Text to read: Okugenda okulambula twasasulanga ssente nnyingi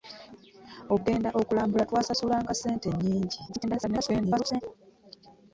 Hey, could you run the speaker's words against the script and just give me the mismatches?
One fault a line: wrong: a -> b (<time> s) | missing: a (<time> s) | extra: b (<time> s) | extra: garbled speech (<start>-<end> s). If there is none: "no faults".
extra: garbled speech (3.5-4.6 s)